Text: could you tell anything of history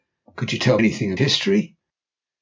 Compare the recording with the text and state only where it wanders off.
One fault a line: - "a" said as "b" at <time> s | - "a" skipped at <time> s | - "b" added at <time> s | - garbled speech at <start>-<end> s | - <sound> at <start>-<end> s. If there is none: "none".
none